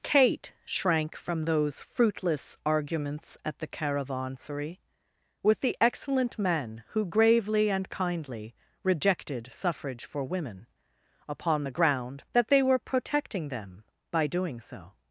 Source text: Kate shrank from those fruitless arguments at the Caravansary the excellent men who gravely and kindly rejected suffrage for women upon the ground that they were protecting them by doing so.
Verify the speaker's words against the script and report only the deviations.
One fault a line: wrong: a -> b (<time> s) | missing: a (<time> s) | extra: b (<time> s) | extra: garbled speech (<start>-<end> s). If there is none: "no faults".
extra: with (5.4 s)